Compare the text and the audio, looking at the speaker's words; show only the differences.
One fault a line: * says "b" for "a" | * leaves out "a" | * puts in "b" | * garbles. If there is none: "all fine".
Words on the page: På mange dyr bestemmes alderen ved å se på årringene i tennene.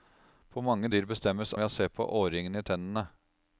* leaves out "alderen"